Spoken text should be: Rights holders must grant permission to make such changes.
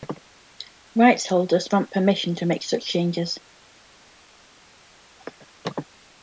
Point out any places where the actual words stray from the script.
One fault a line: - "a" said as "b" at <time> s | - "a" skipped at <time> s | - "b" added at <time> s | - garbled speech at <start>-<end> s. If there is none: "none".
- "must" skipped at 1.7 s